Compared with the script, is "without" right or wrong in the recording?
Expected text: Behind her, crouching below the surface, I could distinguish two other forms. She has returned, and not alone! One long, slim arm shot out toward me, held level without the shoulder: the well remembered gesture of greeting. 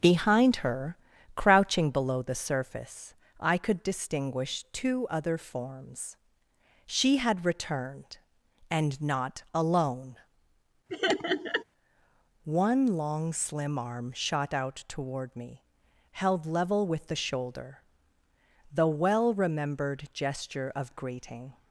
wrong